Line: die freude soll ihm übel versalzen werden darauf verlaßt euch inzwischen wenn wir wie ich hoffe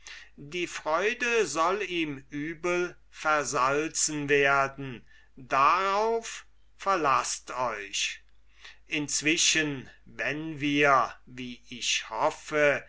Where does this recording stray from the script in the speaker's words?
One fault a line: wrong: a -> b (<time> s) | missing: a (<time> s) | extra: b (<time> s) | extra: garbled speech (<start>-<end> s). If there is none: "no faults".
no faults